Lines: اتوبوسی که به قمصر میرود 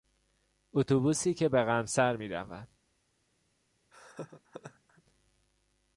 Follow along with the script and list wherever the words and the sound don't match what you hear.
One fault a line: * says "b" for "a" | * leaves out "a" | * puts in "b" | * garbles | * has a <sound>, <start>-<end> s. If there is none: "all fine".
* has a laugh, 3.9-5.0 s